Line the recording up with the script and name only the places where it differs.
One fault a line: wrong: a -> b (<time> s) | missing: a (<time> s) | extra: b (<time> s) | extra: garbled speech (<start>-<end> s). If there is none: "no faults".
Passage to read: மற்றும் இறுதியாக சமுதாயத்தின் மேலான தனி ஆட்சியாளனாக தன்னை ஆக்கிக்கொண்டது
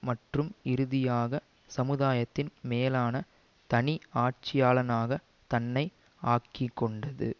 no faults